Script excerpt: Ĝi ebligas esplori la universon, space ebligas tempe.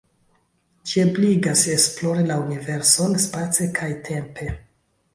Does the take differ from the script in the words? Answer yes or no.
yes